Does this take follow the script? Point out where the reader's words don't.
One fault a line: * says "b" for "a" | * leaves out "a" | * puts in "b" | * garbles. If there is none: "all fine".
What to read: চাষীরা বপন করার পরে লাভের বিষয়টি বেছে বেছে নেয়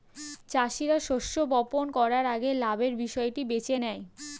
* puts in "শস্য"
* says "আগে" for "পরে"
* leaves out "বেছে"